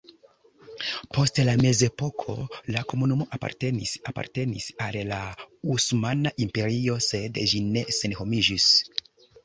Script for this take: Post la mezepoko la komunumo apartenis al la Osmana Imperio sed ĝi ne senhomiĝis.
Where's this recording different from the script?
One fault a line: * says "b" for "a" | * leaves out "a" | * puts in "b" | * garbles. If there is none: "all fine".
* puts in "apartenis"